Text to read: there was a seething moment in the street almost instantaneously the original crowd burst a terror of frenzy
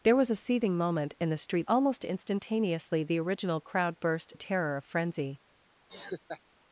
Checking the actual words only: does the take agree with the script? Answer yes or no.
yes